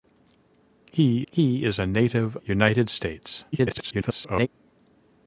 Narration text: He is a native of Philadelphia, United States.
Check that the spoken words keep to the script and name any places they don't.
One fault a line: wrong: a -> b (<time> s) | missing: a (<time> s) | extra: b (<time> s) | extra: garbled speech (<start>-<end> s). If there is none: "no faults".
extra: he (1.3 s)
missing: of Philadelphia (2.4 s)
extra: garbled speech (3.5-4.5 s)